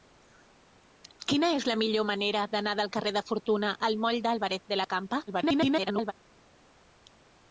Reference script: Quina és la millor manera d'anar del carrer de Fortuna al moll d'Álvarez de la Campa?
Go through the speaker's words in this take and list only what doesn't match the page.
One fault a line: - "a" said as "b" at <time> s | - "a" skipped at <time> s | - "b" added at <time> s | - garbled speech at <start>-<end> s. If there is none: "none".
- garbled speech at 5.3-6.1 s